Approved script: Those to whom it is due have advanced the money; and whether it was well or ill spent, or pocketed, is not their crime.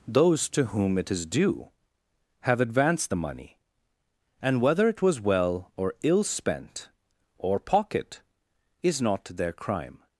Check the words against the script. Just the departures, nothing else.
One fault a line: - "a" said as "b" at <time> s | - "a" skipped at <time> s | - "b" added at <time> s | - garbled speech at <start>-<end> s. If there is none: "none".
- "pocketed" said as "pocket" at 7.6 s